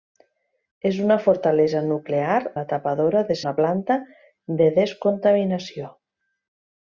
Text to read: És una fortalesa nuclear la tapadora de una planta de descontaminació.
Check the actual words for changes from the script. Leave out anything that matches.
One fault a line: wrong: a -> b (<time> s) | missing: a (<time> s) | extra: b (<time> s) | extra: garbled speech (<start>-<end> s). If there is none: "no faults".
no faults